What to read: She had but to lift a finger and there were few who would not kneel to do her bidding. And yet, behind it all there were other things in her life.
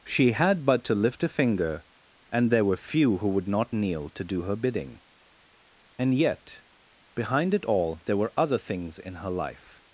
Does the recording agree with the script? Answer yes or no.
yes